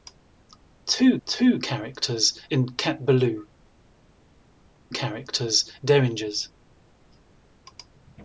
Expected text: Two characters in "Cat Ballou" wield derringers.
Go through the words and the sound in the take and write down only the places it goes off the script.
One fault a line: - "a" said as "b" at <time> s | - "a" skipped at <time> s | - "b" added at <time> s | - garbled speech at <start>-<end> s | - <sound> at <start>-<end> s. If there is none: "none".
- "two" added at 1.3 s
- "wield" said as "characters" at 4.9 s